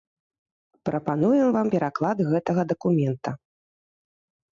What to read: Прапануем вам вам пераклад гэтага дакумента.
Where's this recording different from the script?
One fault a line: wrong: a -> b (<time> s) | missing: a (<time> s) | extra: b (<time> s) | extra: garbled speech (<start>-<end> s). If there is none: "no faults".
missing: вам (1.7 s)